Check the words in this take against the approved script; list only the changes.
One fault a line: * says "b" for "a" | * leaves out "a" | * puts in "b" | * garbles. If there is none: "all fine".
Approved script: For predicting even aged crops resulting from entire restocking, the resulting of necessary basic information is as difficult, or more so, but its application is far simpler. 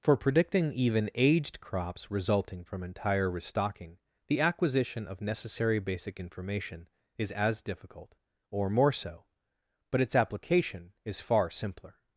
* says "acquisition" for "resulting"